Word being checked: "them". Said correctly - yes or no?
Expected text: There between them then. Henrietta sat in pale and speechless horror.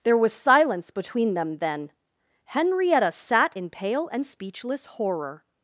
yes